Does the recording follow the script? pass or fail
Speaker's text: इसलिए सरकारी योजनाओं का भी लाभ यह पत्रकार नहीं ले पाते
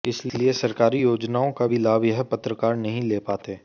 pass